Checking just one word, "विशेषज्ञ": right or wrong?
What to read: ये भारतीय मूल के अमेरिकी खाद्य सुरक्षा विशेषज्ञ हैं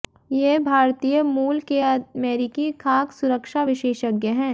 right